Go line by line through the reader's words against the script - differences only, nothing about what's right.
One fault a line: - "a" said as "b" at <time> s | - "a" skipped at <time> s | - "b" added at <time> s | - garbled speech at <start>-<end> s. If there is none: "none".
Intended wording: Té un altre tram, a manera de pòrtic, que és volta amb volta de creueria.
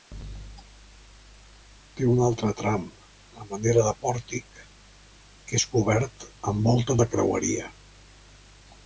- "volta" said as "cobert" at 5.7 s